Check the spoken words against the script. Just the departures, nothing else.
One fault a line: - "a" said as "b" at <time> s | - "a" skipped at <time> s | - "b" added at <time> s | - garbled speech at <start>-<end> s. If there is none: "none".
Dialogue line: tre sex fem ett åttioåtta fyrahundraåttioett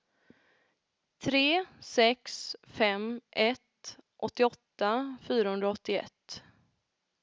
none